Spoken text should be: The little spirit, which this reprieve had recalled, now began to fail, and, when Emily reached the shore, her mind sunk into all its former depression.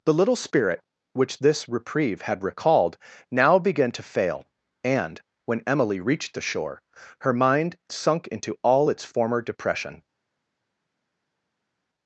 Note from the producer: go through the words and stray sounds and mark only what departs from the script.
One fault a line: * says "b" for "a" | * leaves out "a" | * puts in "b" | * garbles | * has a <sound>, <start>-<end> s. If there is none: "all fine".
all fine